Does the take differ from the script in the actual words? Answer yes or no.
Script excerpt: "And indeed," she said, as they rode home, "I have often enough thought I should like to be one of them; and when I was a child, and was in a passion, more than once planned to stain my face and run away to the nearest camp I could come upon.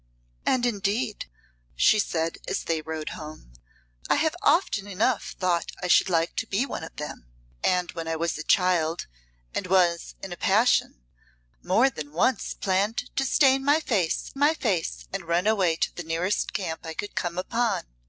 yes